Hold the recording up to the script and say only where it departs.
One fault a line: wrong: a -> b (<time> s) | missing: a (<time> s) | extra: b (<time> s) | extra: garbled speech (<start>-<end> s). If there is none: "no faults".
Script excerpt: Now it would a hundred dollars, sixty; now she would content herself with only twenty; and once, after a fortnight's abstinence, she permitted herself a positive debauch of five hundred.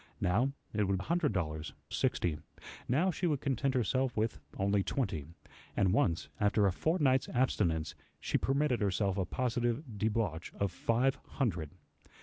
no faults